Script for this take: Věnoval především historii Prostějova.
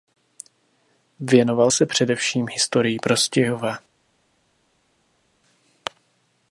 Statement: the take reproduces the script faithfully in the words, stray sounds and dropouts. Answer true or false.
false